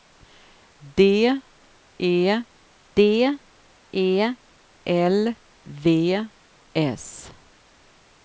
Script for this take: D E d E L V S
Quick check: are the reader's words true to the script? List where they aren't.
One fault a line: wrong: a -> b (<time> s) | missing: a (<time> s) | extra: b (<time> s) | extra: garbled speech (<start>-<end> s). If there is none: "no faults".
no faults